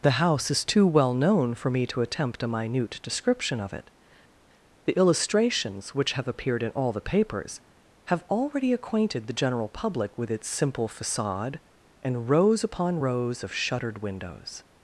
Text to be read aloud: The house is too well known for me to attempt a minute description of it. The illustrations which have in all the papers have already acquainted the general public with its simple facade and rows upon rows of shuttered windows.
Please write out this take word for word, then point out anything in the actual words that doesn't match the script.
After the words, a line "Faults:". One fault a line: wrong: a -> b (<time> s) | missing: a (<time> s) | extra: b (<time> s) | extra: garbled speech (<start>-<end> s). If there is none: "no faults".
The house is too well known for me to attempt a minute description of it. The illustrations which have appeared in all the papers have already acquainted the general public with its simple facade and rows upon rows of shuttered windows.
Faults:
extra: appeared (6.3 s)